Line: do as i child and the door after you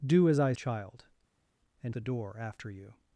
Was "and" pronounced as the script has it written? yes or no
yes